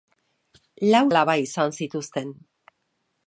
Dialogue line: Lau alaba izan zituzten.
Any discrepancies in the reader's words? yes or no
no